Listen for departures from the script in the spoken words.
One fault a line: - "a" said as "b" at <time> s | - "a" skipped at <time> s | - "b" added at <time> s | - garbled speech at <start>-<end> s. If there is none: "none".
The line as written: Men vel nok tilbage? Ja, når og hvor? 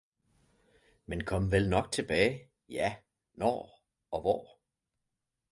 - "kom" added at 1.2 s